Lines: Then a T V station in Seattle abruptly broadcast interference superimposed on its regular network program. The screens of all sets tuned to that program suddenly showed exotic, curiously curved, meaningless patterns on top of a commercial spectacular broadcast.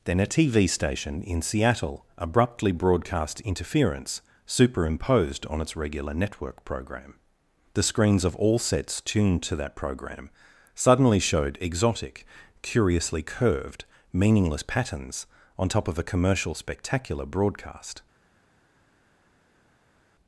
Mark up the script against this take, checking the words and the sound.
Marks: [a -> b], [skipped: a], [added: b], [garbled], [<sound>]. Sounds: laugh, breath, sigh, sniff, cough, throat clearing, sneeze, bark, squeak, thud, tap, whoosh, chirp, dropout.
Then a T V station in Seattle abruptly broadcast interference superimposed on its regular network program. The screens of all sets tuned to that program suddenly showed exotic, curiously curved, meaningless patterns on top of a commercial spectacular broadcast.